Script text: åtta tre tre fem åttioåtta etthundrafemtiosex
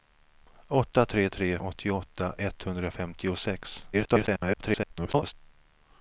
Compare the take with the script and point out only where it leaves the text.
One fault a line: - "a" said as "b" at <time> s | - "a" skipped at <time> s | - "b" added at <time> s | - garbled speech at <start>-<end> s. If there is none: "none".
- "fem" skipped at 1.6 s
- garbled speech at 3.9-5.3 s